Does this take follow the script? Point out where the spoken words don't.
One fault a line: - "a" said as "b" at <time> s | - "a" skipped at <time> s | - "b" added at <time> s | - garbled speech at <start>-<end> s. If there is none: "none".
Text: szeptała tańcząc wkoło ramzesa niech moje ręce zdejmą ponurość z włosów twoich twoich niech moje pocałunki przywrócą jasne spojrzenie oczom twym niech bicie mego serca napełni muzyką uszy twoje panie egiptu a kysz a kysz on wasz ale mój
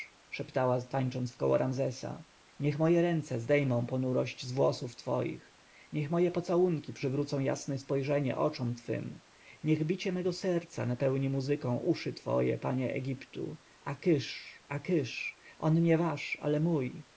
- "twoich" skipped at 5.5 s
- "nie" added at 15.8 s